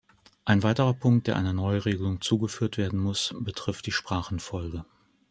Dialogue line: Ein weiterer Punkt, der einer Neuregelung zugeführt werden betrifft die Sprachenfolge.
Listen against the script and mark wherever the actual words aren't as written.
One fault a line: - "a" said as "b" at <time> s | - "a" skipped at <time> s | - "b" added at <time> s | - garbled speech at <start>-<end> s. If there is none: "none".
- "muss" added at 3.0 s